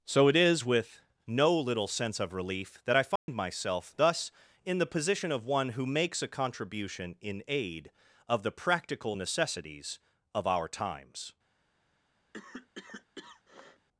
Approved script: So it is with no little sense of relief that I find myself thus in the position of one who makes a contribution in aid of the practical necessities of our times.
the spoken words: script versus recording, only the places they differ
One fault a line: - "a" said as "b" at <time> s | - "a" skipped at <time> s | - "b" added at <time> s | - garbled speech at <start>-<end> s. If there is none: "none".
none